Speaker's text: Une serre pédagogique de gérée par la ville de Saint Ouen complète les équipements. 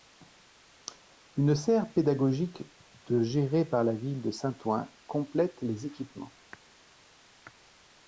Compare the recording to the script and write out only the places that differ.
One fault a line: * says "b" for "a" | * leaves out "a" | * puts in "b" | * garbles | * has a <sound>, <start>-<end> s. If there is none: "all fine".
all fine